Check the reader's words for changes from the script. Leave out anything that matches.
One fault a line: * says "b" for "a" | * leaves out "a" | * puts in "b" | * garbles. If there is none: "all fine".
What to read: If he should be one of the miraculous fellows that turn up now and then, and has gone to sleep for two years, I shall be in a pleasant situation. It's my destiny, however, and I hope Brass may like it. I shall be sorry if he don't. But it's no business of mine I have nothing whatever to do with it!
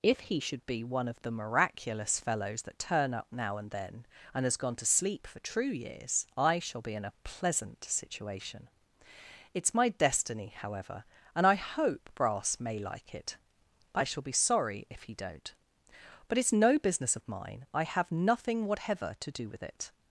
* says "true" for "two"